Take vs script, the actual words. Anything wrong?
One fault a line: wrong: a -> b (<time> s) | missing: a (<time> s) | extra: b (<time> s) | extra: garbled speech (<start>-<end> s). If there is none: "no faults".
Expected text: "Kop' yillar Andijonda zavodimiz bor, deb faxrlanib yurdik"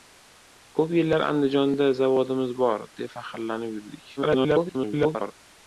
extra: garbled speech (4.2-5.3 s)